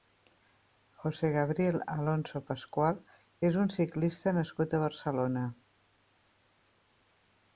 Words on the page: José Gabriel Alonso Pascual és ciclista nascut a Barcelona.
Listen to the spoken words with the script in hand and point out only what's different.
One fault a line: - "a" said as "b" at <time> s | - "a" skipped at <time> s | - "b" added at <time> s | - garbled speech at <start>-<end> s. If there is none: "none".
- "un" added at 3.6 s